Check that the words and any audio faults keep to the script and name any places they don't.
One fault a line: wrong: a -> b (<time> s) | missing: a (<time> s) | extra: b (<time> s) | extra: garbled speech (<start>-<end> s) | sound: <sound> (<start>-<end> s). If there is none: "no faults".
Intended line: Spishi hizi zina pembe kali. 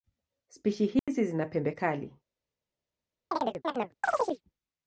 sound: dropout (1.0-1.1 s)
sound: chirp (3.3-4.4 s)